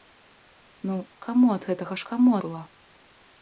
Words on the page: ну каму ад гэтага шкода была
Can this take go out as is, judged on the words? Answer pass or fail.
fail